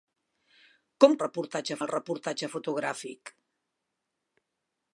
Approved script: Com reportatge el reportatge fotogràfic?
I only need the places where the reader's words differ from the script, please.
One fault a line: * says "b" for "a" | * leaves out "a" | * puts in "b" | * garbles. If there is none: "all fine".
all fine